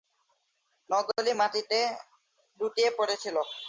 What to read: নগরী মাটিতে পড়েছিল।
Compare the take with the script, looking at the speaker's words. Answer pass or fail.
fail